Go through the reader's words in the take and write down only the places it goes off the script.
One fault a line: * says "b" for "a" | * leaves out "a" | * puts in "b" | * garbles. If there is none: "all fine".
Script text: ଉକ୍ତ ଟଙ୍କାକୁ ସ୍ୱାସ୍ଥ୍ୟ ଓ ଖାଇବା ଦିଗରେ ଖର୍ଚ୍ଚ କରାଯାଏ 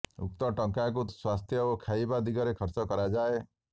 all fine